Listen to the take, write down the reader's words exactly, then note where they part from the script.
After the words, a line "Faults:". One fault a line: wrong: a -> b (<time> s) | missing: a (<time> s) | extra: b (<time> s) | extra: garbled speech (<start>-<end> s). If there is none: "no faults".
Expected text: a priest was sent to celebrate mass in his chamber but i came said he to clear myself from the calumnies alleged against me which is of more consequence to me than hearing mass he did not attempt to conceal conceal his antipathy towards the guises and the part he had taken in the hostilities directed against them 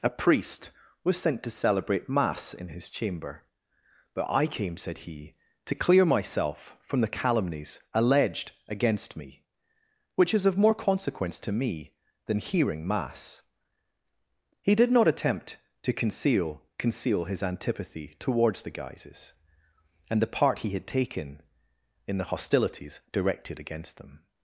a priest was sent to celebrate mass in his chamber but i came said he to clear myself from the calumnies alleged against me which is of more consequence to me than hearing mass he did not attempt to conceal conceal his antipathy towards the guises and the part he had taken in the hostilities directed against them
Faults:
no faults